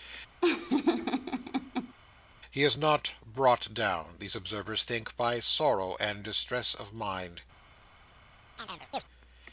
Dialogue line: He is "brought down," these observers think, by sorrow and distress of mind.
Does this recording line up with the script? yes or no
no